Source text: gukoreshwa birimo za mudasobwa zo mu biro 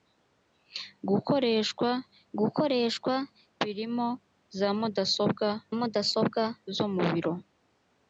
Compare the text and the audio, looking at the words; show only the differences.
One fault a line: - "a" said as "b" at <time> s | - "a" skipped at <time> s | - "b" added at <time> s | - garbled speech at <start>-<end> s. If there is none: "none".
- "gukoreshwa" added at 2.4 s
- "mudasobwa" added at 5.8 s